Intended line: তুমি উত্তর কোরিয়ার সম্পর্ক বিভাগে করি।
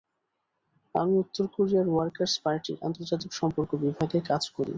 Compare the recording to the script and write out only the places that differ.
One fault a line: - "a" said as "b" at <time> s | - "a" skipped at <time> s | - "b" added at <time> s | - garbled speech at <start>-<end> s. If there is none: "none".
- "তুমি" said as "আমি" at 0.9 s
- "ওয়ার্কার্স পার্টির আন্তর্জাতিক" added at 1.9 s
- "কাজ" added at 4.3 s